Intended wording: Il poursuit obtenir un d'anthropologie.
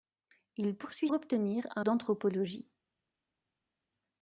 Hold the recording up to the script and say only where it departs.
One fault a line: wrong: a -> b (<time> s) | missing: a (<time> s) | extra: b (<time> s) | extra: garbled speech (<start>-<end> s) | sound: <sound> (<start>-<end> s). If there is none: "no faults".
no faults